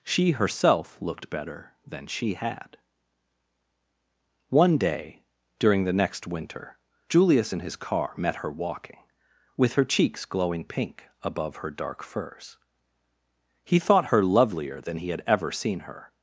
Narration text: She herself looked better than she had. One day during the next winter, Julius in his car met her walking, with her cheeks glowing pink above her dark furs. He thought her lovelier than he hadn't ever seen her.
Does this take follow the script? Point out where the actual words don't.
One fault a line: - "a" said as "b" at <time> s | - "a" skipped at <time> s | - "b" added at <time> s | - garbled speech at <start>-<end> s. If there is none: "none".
- "hadn't" said as "had" at 15.1 s